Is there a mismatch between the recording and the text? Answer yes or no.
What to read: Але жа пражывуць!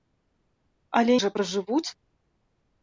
no